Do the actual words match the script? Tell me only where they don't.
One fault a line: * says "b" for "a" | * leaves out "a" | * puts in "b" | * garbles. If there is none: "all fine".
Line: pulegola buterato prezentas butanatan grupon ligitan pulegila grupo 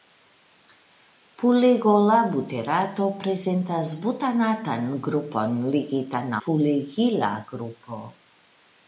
all fine